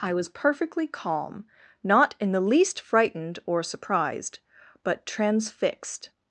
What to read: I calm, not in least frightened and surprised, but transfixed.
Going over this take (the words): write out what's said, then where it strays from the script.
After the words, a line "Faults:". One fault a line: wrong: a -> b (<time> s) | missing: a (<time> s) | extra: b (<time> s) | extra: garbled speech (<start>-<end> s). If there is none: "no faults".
I was perfectly calm, not in the least frightened or surprised, but transfixed.
Faults:
extra: was perfectly (0.1 s)
extra: the (2.3 s)
wrong: and -> or (3.5 s)